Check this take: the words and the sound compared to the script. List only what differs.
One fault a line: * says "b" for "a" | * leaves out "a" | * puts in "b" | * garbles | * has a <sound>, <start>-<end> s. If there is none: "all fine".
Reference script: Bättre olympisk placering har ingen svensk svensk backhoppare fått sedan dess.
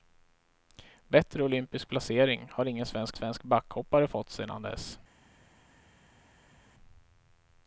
all fine